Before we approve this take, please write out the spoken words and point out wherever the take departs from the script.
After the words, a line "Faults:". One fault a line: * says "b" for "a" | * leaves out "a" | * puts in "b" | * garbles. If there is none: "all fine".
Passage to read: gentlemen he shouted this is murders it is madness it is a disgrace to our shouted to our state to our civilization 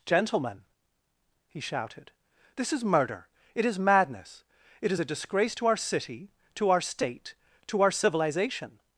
gentlemen he shouted this is murder it is madness it is a disgrace to our city to our state to our civilization
Faults:
* says "murder" for "murders"
* says "city" for "shouted"